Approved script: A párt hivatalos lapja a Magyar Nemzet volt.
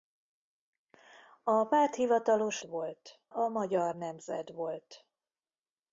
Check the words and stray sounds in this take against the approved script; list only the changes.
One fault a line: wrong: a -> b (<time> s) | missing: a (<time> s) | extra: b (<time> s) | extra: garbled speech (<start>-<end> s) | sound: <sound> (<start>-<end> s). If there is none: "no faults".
wrong: lapja -> volt (2.6 s)